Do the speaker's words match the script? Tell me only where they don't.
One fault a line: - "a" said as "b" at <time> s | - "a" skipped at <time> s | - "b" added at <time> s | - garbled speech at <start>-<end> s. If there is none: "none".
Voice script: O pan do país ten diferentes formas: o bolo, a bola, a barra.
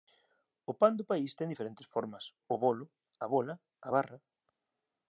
none